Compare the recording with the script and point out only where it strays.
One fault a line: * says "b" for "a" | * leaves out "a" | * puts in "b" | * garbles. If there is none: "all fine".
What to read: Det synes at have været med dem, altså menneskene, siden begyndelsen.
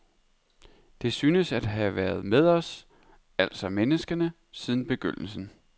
* says "os" for "dem"